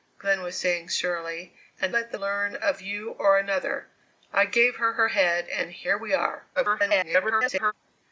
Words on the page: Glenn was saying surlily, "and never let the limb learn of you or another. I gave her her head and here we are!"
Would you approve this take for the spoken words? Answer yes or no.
no